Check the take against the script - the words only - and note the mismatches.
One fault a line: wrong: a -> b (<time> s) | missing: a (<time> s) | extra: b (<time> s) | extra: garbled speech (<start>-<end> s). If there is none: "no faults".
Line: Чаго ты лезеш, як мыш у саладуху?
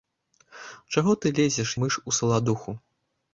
missing: як (1.8 s)